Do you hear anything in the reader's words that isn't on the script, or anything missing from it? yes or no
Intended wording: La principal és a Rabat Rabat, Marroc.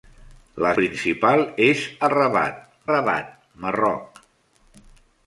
no